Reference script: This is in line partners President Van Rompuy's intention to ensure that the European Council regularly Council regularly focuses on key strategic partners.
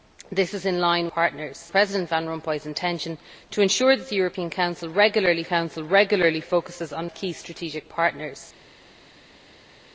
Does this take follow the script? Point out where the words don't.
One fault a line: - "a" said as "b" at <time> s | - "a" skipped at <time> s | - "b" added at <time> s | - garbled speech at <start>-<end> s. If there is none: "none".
none